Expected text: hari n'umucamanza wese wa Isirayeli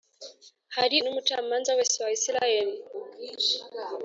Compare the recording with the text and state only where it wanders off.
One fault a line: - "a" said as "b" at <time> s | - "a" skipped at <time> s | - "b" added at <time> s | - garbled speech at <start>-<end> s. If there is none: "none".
none